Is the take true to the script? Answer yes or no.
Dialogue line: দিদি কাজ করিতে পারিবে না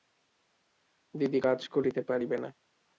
yes